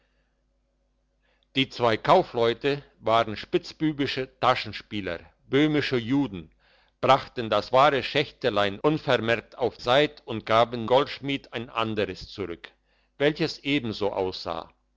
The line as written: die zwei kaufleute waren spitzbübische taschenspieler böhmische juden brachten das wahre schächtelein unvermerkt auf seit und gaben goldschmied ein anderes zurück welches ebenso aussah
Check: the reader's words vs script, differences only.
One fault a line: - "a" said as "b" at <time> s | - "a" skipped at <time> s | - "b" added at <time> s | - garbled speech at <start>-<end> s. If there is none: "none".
none